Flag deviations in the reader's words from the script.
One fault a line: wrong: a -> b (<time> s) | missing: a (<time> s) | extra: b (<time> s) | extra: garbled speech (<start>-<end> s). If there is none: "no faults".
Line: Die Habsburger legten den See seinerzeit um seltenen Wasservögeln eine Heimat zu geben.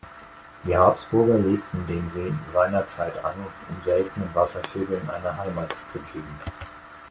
extra: an (3.2 s)